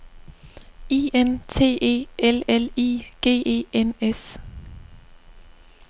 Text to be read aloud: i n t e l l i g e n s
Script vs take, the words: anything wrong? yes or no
no